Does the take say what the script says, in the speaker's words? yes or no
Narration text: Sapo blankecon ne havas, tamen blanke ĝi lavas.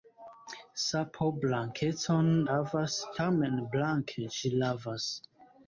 no